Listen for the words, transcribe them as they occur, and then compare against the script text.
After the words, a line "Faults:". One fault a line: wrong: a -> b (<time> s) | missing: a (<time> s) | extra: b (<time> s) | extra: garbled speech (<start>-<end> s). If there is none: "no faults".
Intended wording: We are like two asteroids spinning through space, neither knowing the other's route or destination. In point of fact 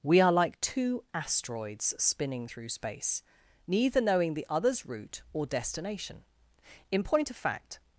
We are like two asteroids spinning through space, neither knowing the other's route or destination. In point of fact
Faults:
no faults